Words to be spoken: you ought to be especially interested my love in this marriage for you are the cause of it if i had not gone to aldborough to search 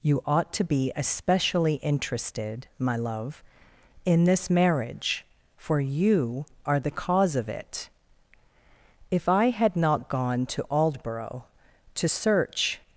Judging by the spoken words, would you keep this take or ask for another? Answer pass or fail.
pass